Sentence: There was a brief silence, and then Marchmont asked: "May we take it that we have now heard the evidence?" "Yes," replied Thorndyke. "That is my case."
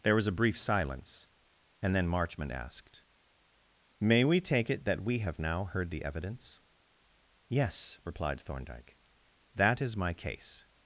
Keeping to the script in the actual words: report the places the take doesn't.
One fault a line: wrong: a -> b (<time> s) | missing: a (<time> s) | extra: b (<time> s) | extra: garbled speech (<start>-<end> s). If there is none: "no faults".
no faults